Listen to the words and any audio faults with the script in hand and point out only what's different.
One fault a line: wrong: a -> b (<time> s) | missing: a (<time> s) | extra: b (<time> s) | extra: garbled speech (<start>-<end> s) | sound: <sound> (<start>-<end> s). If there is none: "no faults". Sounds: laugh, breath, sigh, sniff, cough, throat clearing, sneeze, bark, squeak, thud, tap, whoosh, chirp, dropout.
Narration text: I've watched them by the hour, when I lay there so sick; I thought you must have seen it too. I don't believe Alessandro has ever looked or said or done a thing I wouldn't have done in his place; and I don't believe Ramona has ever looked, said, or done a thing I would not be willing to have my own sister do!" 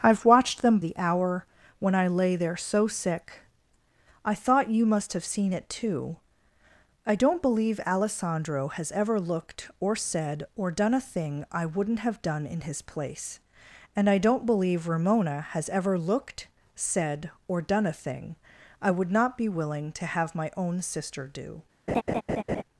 missing: by (0.8 s)
sound: laugh (21.9-22.6 s)